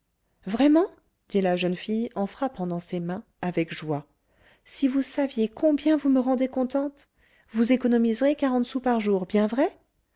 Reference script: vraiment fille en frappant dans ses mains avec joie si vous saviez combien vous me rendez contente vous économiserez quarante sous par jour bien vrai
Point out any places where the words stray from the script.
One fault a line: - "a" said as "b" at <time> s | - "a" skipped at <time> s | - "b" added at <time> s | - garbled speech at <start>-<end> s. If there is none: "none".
- "dit la jeune" added at 1.3 s